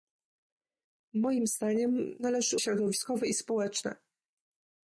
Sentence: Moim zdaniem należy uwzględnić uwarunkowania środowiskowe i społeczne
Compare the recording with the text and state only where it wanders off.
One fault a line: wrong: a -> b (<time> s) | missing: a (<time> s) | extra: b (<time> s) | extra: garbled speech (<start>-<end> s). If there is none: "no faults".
missing: uwzględnić uwarunkowania (2.6 s)